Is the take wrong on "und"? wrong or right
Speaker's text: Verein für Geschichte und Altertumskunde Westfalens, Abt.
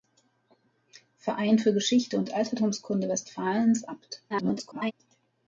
right